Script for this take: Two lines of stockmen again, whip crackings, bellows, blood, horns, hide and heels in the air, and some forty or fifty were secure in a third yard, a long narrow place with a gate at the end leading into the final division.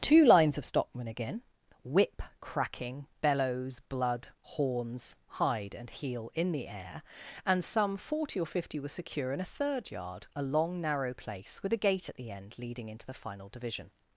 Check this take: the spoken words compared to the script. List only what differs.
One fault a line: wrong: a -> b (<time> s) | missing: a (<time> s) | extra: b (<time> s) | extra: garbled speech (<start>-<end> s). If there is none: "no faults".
wrong: crackings -> cracking (2.4 s)
wrong: heels -> heel (5.9 s)